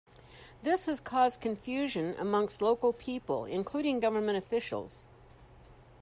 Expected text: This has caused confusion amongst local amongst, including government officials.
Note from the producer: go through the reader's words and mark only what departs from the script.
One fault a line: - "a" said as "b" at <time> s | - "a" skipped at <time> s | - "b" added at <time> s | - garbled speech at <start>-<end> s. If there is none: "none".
- "amongst" said as "people" at 2.9 s